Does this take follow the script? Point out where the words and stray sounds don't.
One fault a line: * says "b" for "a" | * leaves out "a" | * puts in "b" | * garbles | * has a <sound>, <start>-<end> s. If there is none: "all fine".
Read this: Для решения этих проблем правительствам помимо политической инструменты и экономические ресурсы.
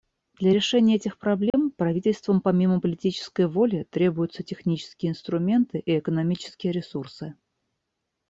* has a dropout, 1.5-1.5 s
* puts in "воли требуются технические"